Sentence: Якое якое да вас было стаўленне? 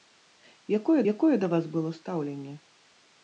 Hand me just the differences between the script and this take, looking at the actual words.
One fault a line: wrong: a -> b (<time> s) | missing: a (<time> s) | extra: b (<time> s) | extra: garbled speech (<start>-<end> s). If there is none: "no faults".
no faults